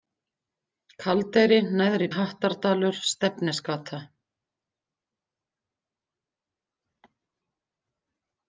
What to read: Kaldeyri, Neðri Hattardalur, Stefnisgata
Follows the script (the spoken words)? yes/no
yes